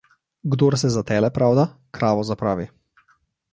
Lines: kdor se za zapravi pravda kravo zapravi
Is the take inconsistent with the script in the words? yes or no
yes